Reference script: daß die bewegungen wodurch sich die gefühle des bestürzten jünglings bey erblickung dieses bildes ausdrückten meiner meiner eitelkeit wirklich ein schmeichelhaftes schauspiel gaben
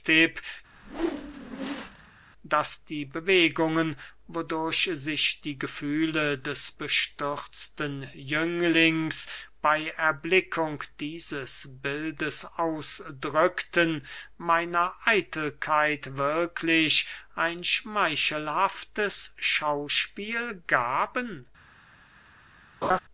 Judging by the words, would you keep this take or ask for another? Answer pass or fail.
fail